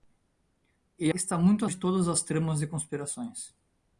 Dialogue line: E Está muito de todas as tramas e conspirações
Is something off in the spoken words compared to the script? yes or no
no